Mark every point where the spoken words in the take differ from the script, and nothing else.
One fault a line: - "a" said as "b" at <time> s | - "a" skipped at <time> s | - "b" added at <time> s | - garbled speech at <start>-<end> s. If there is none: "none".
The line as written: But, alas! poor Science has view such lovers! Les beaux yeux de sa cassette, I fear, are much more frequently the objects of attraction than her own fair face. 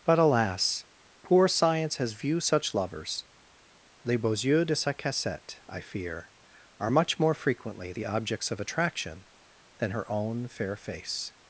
none